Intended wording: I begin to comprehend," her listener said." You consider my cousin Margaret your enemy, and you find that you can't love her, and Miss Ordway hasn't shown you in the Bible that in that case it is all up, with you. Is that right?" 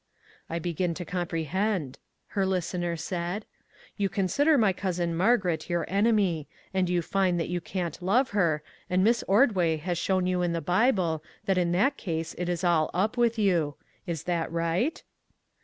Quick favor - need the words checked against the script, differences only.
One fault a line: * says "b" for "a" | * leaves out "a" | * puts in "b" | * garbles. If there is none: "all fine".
* says "has" for "hasn't"